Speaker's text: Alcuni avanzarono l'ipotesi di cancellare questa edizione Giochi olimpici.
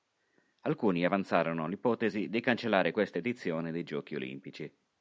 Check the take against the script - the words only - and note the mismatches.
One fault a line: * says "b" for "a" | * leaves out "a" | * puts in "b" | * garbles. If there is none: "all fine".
* puts in "dei"